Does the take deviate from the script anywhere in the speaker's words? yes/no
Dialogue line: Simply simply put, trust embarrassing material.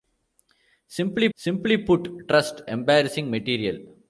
no